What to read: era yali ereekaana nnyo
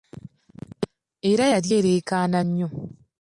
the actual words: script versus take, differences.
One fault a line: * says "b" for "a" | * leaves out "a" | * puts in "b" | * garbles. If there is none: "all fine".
all fine